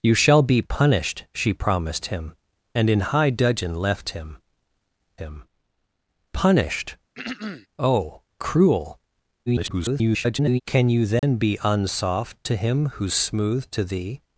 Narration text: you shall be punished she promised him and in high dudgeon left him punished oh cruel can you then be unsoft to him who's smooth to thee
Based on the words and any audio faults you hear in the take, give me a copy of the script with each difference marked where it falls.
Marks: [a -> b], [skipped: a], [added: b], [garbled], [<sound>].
you shall be punished she promised him and in high dudgeon left him [added: him] punished [throat clearing] oh cruel [garbled] can you then [dropout] be unsoft to him who's smooth to thee